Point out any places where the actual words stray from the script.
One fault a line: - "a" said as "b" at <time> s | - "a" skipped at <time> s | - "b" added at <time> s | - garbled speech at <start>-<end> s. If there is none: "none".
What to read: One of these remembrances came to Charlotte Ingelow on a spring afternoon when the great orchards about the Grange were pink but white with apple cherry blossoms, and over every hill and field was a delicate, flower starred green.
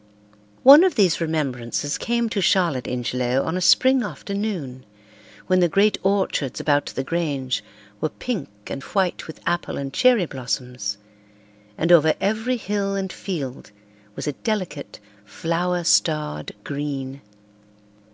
- "but" said as "and" at 8.7 s
- "and" added at 9.8 s